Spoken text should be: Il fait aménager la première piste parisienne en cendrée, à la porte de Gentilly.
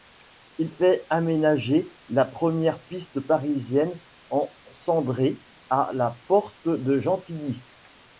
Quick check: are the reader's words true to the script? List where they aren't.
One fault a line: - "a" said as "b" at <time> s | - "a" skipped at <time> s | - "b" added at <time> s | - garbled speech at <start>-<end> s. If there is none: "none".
none